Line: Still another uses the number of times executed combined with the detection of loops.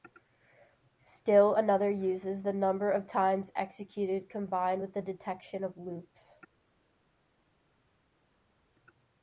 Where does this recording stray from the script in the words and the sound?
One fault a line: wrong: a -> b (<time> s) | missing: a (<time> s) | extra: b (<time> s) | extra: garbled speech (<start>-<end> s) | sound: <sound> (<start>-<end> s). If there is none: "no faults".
no faults